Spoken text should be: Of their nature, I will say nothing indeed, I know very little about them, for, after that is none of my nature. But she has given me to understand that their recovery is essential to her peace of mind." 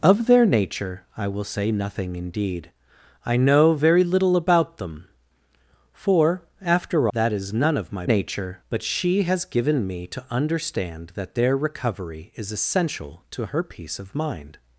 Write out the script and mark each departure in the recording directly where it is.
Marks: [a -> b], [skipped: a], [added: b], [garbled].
Of their nature, I will say nothing indeed, I know very little about them, for, after that is none of my nature. But she has given me to understand that their recovery is essential to her peace of mind."